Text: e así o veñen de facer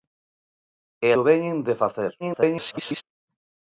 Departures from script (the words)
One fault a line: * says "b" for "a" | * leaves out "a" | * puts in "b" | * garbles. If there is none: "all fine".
* leaves out "así"
* garbles